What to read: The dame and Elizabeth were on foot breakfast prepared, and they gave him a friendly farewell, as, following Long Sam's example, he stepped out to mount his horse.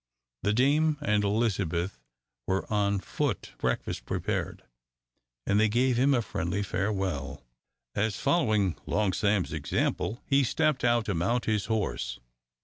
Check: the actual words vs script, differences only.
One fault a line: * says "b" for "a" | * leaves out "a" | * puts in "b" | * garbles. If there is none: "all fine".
all fine